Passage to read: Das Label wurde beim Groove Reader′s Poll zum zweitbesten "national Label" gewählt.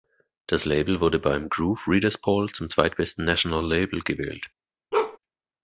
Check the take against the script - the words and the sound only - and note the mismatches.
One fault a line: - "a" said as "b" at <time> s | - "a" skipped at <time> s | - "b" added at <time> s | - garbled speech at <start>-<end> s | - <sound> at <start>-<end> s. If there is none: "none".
- bark at 4.9-5.2 s